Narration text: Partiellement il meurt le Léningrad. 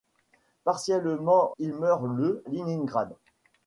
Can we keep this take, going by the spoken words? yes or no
yes